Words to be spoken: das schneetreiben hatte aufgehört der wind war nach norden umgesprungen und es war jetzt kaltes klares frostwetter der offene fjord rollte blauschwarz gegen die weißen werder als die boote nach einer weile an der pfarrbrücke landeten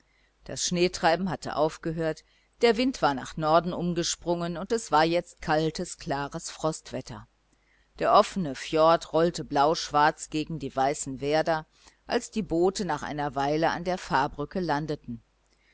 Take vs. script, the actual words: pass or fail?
pass